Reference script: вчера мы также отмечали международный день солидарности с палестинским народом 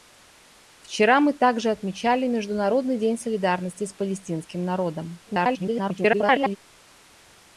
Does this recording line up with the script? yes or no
no